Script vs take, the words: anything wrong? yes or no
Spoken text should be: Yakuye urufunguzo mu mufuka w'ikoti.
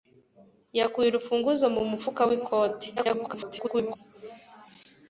yes